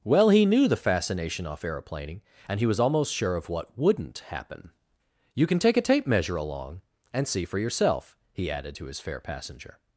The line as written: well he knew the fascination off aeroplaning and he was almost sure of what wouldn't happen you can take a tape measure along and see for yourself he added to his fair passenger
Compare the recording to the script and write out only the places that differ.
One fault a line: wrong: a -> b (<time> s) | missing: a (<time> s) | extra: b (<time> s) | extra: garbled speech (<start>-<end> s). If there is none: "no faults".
no faults